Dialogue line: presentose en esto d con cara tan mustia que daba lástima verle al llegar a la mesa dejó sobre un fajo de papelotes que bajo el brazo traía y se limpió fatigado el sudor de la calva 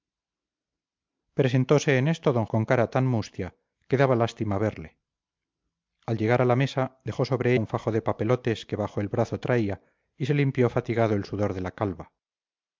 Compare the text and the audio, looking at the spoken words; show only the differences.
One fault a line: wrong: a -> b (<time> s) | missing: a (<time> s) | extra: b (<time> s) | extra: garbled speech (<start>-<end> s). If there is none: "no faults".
no faults